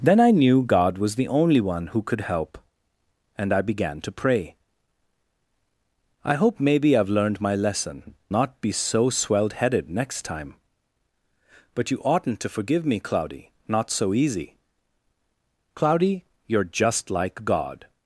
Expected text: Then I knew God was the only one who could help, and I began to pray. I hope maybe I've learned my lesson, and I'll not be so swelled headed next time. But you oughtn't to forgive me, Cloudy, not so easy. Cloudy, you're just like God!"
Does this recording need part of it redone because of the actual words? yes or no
yes